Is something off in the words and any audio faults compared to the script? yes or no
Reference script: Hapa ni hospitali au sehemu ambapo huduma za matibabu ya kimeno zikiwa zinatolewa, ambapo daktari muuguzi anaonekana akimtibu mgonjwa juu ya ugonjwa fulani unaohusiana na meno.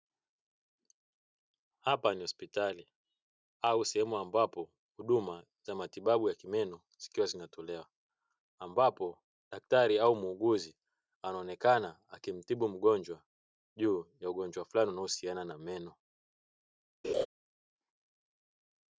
yes